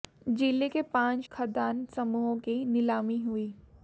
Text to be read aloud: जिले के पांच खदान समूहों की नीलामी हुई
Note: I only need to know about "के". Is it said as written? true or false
true